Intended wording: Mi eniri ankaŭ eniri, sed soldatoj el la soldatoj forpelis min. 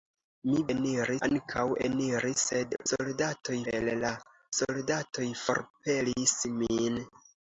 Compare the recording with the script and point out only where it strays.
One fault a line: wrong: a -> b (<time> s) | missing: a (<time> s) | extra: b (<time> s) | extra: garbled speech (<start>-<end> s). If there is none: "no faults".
no faults